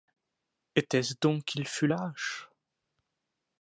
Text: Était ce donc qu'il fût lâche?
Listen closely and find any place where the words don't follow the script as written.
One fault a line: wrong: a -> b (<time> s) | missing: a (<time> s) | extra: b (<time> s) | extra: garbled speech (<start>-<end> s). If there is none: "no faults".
no faults